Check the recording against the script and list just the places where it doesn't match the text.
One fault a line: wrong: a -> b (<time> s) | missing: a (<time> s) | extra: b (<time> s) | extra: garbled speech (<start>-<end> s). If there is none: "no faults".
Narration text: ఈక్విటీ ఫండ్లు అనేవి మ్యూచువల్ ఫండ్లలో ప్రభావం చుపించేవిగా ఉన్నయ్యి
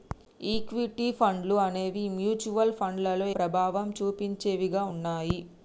no faults